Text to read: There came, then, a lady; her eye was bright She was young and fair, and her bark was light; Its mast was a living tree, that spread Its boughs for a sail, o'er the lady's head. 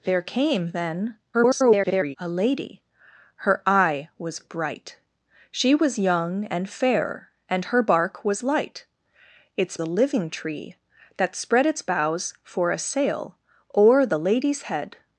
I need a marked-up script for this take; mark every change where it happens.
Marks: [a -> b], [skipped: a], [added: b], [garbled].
There came, then, [garbled] a lady; her eye was bright She was young and fair, and her bark was light; Its [skipped: mast was] a living tree, that spread Its boughs for a sail, o'er the lady's head.